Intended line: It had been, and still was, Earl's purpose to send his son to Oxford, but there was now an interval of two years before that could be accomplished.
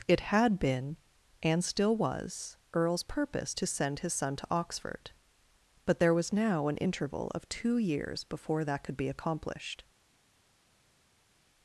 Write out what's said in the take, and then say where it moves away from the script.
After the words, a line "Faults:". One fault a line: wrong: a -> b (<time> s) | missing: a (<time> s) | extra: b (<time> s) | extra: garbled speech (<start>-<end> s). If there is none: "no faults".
It had been, and still was, Earl's purpose to send his son to Oxford, but there was now an interval of two years before that could be accomplished.
Faults:
no faults